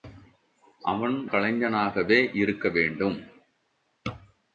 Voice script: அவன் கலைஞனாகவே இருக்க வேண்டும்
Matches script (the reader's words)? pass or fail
pass